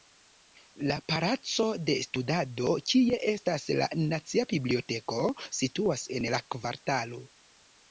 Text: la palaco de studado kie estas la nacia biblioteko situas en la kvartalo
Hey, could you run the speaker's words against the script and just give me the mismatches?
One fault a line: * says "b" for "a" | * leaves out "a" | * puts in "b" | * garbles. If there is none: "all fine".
all fine